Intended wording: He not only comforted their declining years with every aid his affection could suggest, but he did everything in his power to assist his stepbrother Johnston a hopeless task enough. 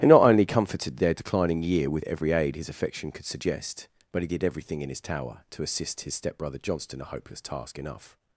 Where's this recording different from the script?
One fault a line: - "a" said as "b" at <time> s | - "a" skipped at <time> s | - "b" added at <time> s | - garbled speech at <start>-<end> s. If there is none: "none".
- "years" said as "year" at 1.6 s
- "power" said as "tower" at 5.0 s